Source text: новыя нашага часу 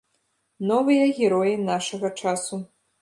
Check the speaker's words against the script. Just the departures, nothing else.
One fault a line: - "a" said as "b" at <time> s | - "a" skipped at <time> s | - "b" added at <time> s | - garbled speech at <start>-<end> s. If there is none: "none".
- "героі" added at 1.2 s